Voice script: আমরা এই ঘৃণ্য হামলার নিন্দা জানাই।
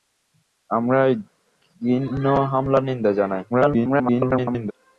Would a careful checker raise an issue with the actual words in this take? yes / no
yes